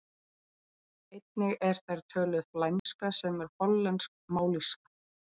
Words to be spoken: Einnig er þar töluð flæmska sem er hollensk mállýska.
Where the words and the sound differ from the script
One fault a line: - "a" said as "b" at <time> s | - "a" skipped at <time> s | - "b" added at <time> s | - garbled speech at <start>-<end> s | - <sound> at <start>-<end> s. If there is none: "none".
- dropout at 2.8-2.9 s